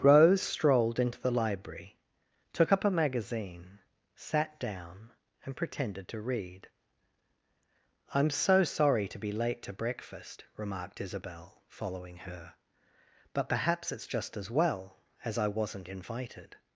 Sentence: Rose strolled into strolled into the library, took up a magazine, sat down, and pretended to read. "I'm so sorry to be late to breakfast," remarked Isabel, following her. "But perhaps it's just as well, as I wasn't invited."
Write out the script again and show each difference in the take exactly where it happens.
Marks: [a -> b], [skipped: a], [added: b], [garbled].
Rose strolled into [skipped: strolled into] the library, took up a magazine, sat down, and pretended to read. "I'm so sorry to be late to breakfast," remarked Isabel, following her. "But perhaps it's just as well, as I wasn't invited."